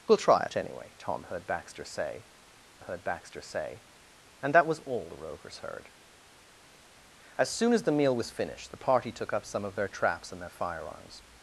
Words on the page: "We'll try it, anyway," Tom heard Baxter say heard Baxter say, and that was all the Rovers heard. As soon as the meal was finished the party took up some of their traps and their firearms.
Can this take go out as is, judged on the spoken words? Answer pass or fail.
pass